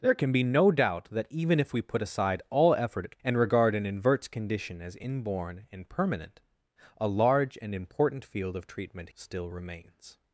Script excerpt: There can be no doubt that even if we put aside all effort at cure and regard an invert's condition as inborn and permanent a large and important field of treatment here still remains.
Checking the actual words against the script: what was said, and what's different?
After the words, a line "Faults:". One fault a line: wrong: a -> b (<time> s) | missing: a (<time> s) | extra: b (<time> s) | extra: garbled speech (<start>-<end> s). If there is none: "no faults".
There can be no doubt that even if we put aside all effort at and regard an invert's condition as inborn and permanent a large and important field of treatment still remains.
Faults:
missing: cure (3.2 s)
missing: here (9.1 s)